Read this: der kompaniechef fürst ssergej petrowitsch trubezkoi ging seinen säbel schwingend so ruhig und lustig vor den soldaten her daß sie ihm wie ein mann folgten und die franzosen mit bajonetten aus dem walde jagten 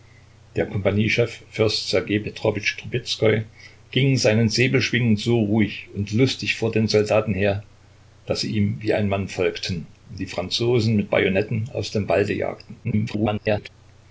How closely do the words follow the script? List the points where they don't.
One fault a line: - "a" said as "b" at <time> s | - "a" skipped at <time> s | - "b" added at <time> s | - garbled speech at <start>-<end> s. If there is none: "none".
- garbled speech at 12.8-13.7 s